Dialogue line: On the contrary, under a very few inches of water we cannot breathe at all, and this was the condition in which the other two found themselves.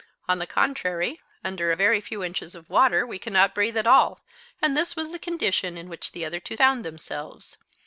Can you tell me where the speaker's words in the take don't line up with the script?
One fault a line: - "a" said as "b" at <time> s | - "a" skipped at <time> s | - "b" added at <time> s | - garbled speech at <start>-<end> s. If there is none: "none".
none